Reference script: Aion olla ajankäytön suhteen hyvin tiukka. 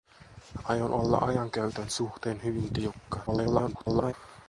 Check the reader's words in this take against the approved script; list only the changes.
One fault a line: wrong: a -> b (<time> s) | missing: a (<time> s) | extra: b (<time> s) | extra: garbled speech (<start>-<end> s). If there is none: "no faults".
extra: garbled speech (3.3-4.1 s)